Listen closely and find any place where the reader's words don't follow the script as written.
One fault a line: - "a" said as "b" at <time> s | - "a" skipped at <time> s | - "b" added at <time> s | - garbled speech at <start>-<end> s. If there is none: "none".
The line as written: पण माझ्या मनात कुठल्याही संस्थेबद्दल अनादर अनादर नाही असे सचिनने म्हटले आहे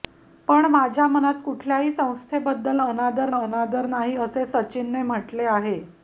none